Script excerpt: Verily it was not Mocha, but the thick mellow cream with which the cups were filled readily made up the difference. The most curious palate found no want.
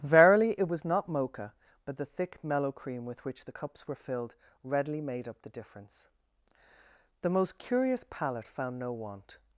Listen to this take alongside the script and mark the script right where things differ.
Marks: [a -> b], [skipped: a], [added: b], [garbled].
Verily it was not Mocha, but the thick mellow cream with which the cups were filled readily made up the difference. The most curious palate found no want.